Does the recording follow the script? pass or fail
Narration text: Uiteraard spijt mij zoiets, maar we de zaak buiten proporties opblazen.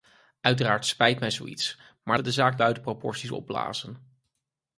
pass